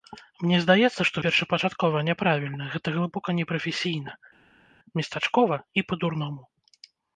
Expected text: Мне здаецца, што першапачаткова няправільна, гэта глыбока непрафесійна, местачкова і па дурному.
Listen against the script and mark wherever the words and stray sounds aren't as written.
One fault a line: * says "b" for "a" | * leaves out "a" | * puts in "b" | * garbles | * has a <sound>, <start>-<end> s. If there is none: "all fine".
all fine